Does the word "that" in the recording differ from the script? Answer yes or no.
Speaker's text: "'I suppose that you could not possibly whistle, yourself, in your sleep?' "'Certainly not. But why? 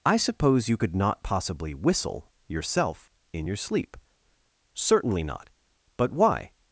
yes